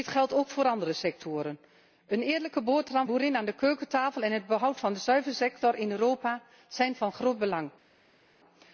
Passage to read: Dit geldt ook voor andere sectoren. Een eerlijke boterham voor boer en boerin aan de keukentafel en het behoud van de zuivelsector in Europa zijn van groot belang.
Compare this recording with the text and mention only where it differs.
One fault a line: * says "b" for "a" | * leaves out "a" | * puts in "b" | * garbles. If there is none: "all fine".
* leaves out "voor boer en"